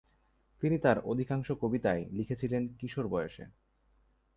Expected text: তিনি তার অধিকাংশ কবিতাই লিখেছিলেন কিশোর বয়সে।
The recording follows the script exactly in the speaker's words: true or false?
true